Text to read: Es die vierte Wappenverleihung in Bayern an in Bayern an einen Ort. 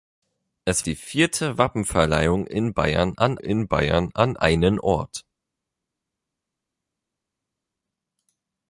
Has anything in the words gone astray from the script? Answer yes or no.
no